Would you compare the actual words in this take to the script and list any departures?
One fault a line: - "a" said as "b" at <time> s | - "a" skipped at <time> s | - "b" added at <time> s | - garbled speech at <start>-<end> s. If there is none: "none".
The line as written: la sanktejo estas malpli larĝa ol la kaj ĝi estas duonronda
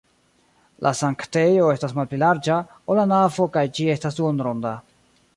- "navo" added at 3.1 s